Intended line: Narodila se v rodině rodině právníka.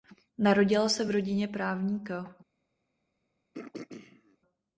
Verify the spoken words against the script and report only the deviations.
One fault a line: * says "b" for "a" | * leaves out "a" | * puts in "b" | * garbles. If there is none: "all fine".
* leaves out "rodině"